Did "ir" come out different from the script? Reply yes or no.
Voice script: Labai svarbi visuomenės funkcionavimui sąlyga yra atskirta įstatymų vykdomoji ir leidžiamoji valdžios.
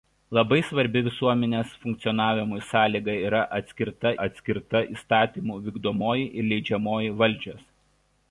no